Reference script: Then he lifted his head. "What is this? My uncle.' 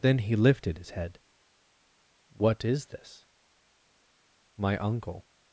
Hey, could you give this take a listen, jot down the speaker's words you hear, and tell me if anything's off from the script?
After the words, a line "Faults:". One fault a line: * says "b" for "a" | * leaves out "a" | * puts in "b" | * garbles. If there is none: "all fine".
Then he lifted his head. "What is this? My uncle.'
Faults:
all fine